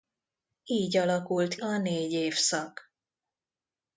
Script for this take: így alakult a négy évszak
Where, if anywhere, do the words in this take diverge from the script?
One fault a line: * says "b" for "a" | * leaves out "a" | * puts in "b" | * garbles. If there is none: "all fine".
all fine